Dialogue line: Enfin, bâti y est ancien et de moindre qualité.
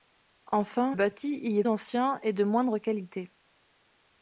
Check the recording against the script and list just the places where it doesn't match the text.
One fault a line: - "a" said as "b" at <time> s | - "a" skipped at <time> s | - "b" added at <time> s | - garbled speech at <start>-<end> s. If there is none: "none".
none